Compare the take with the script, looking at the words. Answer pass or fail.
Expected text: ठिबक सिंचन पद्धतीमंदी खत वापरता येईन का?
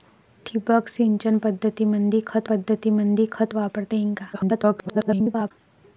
fail